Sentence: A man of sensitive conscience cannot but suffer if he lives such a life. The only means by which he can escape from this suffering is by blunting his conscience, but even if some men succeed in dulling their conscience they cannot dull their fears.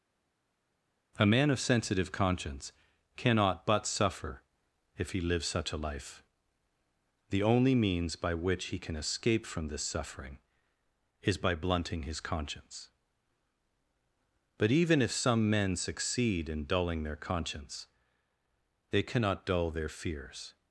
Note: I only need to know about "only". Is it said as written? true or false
true